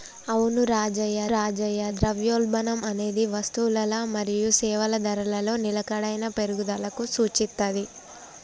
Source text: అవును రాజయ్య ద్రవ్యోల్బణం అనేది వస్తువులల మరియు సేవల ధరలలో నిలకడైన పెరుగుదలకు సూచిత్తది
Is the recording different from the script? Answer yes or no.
yes